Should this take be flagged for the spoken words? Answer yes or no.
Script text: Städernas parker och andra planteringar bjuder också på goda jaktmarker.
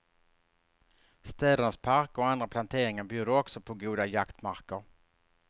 no